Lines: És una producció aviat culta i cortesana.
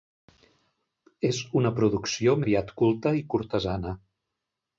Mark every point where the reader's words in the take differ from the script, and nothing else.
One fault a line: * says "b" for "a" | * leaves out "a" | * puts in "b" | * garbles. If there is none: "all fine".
all fine